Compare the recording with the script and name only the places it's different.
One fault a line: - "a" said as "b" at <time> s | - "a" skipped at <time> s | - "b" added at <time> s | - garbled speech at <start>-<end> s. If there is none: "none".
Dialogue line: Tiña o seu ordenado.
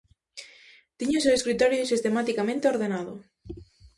- "escritorio sistematicamente" added at 1.4 s